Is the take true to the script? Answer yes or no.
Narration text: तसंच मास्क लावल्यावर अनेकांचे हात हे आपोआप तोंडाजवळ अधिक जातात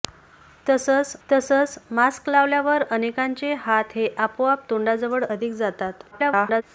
no